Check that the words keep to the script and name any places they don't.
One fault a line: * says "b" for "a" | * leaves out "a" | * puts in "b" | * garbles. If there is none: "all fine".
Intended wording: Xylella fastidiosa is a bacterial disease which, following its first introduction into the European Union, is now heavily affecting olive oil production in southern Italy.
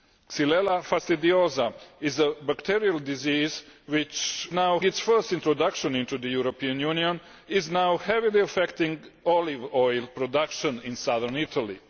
* says "now" for "following"